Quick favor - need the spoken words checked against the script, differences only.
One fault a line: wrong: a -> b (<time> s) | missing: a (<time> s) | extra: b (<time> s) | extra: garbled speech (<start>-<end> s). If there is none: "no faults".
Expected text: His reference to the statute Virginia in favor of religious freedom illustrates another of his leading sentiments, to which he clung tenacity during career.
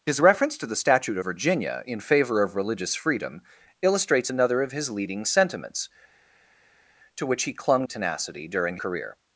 no faults